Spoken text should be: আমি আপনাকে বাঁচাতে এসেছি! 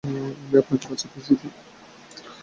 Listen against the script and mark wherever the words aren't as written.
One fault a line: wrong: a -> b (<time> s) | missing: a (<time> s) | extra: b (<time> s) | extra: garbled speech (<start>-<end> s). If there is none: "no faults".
no faults